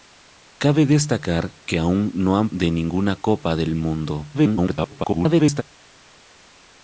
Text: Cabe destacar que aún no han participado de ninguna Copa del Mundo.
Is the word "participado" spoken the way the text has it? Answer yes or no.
no